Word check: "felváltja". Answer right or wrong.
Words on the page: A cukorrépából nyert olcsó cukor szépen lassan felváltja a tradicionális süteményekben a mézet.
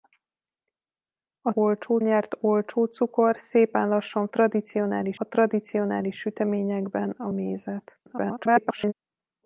wrong